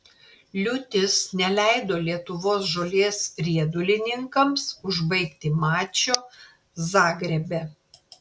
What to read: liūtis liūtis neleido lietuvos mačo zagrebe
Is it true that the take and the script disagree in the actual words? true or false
true